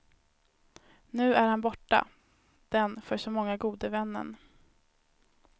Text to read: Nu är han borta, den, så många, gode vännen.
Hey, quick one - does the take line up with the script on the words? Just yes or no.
no